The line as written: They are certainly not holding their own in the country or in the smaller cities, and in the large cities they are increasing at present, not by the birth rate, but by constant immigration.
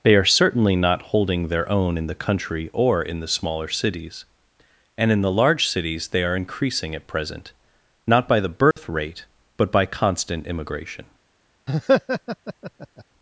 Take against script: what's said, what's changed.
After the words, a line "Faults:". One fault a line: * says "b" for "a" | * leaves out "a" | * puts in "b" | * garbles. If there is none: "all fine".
They are certainly not holding their own in the country or in the smaller cities, and in the large cities they are increasing at present, not by the birth rate, but by constant immigration.
Faults:
all fine